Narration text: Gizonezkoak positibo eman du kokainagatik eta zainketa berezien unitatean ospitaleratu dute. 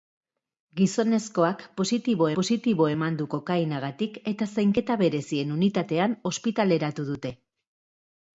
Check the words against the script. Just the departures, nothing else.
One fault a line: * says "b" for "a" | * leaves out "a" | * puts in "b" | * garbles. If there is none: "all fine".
* puts in "positibo"